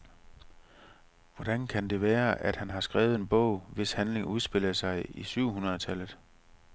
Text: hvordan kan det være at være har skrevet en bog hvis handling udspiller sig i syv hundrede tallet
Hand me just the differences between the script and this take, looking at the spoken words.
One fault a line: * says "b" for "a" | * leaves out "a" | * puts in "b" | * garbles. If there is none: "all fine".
* says "han" for "være"